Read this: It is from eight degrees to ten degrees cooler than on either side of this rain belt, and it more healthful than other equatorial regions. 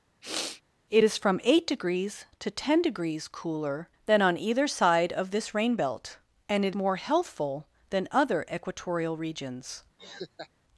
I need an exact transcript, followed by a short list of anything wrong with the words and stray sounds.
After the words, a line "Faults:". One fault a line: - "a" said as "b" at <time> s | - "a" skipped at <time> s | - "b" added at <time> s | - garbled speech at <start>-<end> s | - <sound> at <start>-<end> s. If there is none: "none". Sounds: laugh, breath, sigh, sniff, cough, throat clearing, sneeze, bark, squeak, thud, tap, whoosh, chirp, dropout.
It is from eight degrees to ten degrees cooler than on either side of this rain belt, and it more healthful than other equatorial regions.
Faults:
- sniff at 0.2-0.6 s
- laugh at 10.0-10.5 s